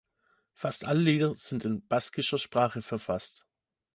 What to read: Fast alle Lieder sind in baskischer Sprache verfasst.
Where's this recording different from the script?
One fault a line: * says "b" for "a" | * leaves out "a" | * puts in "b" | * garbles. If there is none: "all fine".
all fine